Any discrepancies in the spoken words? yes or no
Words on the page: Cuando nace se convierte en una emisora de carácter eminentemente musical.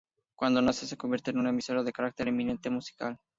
no